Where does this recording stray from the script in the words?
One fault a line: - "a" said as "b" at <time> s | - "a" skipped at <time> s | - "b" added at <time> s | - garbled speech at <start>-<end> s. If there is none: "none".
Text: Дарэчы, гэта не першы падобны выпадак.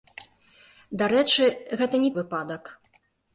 - "першы падобны" skipped at 2.1 s